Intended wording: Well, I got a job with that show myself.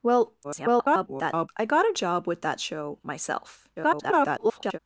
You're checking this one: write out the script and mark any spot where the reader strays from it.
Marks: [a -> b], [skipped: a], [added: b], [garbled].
Well, [garbled] I got a job with that show myself. [garbled]